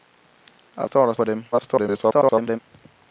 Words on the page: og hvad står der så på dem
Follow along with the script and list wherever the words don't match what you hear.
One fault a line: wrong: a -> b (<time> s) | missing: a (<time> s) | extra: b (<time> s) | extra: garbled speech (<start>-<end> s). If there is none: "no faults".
missing: hvad (0.9 s)
missing: så (1.1 s)
extra: garbled speech (1.5-2.6 s)